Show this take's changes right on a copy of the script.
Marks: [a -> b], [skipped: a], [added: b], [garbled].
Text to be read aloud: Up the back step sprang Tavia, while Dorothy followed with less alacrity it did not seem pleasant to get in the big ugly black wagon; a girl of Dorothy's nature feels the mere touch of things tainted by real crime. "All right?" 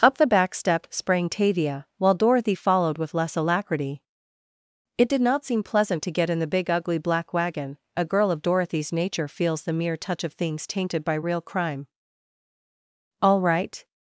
Up the back step sprang Tavia, while Dorothy followed with less alacrity it did not seem pleasant to get in the big ugly black wagon; a girl of Dorothy's nature feels the mere touch of things tainted by real crime. "All right?"